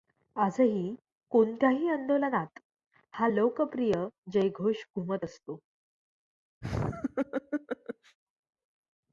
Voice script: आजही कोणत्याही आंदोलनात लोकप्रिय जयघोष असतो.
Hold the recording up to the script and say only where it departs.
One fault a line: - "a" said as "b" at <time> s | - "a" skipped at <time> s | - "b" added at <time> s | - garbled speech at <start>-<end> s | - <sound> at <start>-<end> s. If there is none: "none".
- "हा" added at 3.1 s
- "घुमत" added at 5.0 s
- laugh at 6.6-8.2 s